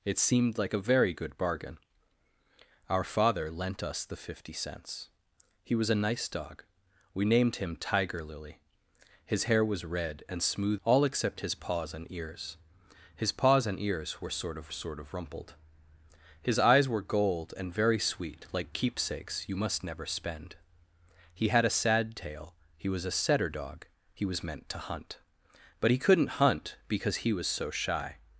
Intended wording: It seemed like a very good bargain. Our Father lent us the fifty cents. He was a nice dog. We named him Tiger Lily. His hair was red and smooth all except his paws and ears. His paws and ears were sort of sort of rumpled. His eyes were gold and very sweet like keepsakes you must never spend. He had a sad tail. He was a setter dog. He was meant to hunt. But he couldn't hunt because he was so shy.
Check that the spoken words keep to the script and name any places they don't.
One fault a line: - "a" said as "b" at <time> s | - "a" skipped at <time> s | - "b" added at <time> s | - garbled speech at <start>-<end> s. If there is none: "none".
none